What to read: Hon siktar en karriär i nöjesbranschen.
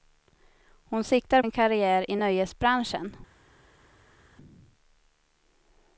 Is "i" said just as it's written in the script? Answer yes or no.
yes